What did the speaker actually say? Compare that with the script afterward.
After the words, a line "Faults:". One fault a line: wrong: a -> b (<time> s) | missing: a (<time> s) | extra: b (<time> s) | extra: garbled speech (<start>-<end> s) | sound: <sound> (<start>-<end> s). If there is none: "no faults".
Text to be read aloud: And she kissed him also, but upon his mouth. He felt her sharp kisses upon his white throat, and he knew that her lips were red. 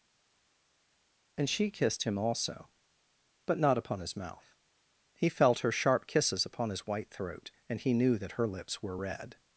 And she kissed him also, but not upon his mouth. He felt her sharp kisses upon his white throat, and he knew that her lips were red.
Faults:
extra: not (3.6 s)